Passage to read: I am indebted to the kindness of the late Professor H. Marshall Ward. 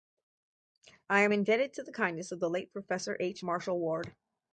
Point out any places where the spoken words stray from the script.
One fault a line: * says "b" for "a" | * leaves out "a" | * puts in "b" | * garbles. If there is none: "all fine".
all fine